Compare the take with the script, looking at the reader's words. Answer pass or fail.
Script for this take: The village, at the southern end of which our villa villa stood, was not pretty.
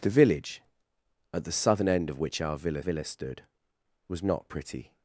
pass